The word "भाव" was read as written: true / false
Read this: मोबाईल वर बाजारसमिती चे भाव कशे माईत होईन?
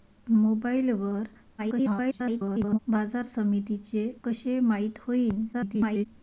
false